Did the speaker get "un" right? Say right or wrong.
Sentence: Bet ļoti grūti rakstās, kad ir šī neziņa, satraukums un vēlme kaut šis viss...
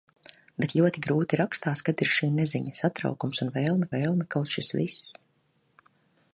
right